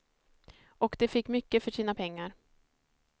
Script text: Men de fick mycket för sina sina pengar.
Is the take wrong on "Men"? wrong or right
wrong